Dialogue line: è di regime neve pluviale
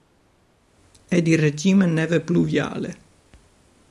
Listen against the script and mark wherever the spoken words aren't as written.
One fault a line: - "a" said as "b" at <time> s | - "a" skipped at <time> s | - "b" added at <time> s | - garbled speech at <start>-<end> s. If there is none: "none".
none